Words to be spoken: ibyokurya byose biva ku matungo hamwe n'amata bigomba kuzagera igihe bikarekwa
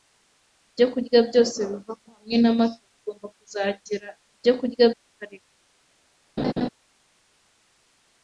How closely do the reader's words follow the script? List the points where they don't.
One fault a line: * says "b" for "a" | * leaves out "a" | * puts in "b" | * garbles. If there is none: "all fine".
* leaves out "matungo"
* says "ibyokurya" for "igihe"